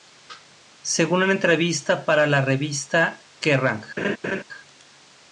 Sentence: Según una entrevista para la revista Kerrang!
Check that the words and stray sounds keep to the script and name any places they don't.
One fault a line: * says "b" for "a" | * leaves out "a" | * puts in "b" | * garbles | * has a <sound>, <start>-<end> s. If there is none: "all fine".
* has a laugh, 4.0-4.4 s